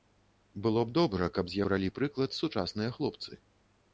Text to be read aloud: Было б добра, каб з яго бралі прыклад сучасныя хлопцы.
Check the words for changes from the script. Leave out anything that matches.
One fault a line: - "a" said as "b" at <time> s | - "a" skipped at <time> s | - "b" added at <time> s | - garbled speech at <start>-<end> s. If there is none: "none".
- "яго" skipped at 1.6 s